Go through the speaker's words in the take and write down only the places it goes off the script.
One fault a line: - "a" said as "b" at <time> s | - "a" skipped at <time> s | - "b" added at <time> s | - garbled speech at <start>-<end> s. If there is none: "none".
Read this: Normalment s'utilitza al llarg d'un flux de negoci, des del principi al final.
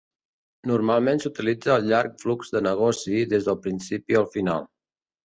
- "d'un" skipped at 2.2 s